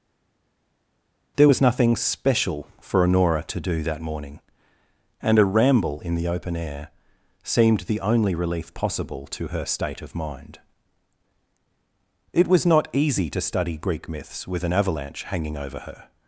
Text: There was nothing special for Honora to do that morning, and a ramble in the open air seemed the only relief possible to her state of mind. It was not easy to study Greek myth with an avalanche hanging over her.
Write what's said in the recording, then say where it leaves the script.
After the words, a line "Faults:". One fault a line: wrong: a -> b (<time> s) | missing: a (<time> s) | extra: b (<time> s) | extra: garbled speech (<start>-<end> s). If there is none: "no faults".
There was nothing special for Honora to do that morning, and a ramble in the open air seemed the only relief possible to her state of mind. It was not easy to study Greek myths with an avalanche hanging over her.
Faults:
wrong: myth -> myths (14.1 s)